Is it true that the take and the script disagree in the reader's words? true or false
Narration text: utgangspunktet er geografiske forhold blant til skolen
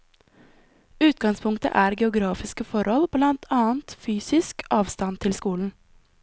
true